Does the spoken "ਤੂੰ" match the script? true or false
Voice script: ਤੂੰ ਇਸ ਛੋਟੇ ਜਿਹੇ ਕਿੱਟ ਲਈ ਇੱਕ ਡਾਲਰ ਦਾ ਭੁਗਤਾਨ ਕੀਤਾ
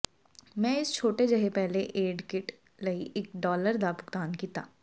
false